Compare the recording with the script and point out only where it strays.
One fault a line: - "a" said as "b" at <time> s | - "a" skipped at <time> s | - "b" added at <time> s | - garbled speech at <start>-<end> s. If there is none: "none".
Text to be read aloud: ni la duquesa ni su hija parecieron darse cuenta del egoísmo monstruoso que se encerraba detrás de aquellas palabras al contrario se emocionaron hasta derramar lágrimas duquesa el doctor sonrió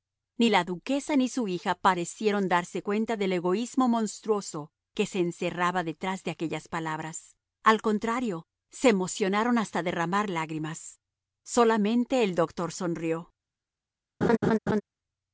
- "duquesa" said as "solamente" at 11.4 s